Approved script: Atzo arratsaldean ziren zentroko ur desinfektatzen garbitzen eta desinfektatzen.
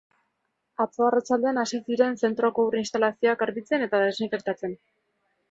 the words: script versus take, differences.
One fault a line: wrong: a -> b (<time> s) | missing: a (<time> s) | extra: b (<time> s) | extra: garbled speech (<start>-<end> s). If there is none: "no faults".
extra: hasi (1.6 s)
wrong: desinfektatzen -> instalazioak (2.8 s)